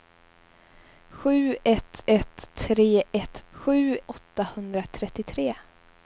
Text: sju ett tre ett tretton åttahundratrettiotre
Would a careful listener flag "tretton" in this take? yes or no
yes